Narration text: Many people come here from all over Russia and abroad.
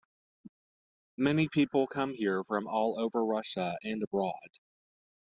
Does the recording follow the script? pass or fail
pass